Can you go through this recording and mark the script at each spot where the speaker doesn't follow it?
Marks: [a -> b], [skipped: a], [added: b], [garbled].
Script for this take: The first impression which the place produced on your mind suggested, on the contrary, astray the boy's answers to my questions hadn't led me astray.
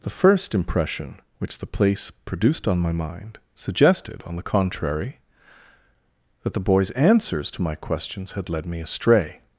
The first impression which the place produced on [your -> my] mind suggested, on the contrary, [astray -> that] the boy's answers to my questions [hadn't -> had] led me astray.